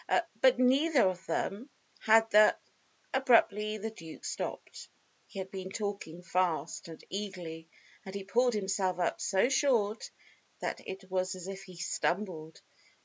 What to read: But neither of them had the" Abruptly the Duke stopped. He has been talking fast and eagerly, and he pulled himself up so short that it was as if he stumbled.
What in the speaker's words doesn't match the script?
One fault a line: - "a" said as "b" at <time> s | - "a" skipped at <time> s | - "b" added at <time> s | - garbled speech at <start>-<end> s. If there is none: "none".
- "has" said as "had" at 5.4 s